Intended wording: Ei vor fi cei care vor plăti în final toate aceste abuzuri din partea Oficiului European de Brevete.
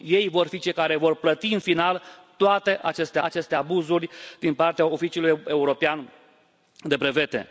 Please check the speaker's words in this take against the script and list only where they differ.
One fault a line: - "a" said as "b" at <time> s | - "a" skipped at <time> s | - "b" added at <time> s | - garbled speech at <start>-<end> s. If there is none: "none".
- "aceste" added at 3.2 s